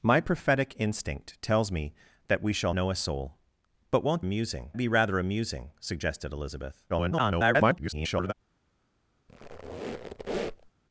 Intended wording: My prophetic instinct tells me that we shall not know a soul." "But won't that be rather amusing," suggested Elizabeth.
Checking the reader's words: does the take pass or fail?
fail